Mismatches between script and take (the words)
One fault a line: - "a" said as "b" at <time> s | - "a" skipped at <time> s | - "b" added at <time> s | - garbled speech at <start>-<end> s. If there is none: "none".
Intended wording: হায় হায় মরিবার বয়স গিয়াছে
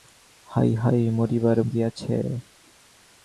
- "বয়স" skipped at 1.6 s